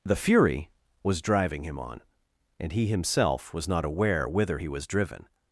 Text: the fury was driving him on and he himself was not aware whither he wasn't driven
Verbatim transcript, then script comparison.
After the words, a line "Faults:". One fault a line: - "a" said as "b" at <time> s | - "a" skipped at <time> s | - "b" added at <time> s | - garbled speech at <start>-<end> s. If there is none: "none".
the fury was driving him on and he himself was not aware whither he was driven
Faults:
- "wasn't" said as "was" at 4.7 s